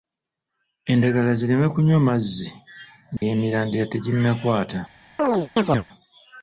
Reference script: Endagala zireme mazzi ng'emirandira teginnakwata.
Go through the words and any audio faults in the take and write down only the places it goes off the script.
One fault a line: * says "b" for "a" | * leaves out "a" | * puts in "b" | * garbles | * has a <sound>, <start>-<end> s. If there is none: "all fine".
* puts in "kunywa"
* has a dropout, 3.2-3.2 s
* has a chirp, 5.2-5.9 s